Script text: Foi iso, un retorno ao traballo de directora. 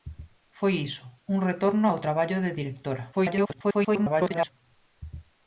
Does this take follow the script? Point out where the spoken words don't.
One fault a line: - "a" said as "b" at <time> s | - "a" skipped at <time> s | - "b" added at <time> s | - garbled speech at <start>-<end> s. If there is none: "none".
- garbled speech at 3.1-4.5 s